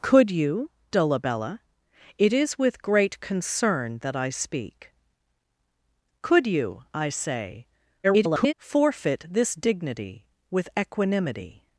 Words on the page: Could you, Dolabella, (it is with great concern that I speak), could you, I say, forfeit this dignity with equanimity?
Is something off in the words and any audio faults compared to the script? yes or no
yes